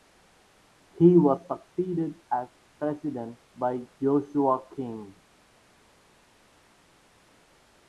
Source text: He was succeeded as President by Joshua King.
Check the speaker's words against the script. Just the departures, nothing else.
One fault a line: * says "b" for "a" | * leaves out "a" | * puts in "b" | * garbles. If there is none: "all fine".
all fine